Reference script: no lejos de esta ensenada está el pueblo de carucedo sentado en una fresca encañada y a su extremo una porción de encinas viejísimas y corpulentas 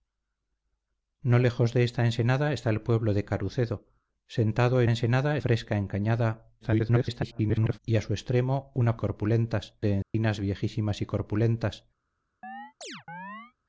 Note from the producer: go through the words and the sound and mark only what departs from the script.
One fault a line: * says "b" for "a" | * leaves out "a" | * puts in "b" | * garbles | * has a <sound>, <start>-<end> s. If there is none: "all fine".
* says "ensenada" for "una"
* garbles
* says "corpulentas" for "porción"
* has a dropout, 10.0-10.1 s
* has a chirp, 12.4-13.5 s